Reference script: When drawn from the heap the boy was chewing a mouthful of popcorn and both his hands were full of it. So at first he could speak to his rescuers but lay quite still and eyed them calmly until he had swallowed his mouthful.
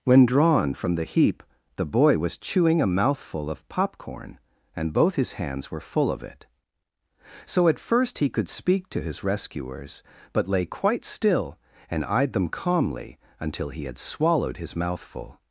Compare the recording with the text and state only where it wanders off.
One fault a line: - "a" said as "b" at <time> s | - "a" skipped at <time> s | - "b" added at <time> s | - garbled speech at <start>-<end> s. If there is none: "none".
none